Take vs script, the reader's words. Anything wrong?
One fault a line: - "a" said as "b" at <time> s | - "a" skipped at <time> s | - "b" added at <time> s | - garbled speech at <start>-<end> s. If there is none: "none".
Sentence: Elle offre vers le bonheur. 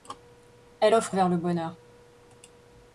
none